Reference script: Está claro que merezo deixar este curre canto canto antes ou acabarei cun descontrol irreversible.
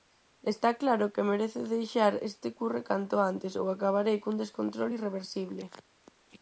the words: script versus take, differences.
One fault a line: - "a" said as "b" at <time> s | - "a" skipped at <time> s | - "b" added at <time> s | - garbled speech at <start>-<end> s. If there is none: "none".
- "canto" skipped at 3.2 s